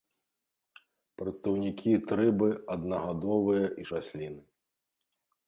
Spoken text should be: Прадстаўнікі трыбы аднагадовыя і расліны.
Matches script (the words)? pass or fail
pass